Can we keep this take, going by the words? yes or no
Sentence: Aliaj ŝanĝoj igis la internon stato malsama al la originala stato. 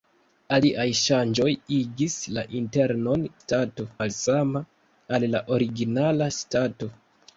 yes